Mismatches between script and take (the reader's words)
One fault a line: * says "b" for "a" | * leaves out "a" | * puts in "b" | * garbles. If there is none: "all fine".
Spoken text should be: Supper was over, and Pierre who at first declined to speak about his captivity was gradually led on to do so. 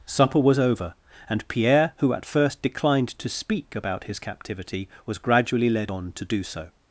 all fine